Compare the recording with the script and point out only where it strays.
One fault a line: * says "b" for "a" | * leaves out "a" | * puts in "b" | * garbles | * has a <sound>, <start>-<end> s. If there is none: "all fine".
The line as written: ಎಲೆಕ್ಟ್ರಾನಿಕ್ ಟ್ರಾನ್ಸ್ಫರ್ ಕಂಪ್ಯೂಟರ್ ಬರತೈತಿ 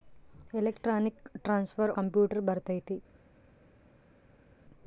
all fine